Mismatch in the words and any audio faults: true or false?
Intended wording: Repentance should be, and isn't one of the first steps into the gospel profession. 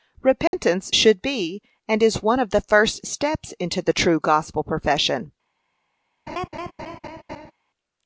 true